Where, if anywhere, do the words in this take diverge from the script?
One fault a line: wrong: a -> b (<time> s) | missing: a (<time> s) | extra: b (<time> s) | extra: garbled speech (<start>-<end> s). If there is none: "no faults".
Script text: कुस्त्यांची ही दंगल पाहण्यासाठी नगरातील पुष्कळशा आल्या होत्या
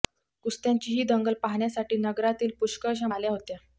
no faults